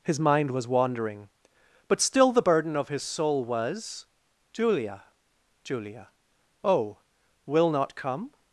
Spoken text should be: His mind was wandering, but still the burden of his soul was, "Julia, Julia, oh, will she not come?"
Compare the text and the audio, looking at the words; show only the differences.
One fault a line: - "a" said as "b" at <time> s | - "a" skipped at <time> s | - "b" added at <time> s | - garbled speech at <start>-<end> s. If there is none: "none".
- "she" skipped at 7.7 s